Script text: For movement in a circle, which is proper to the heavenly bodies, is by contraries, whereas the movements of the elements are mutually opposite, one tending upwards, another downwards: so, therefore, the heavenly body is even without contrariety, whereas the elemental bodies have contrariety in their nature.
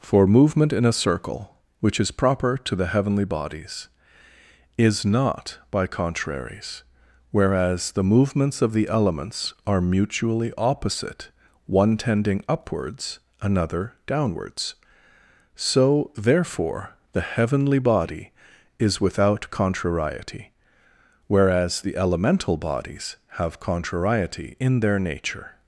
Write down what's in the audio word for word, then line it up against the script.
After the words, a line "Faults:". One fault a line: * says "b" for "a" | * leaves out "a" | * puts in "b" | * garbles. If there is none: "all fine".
For movement in a circle, which is proper to the heavenly bodies, is not by contraries, whereas the movements of the elements are mutually opposite, one tending upwards, another downwards: so, therefore, the heavenly body is without contrariety, whereas the elemental bodies have contrariety in their nature.
Faults:
* puts in "not"
* leaves out "even"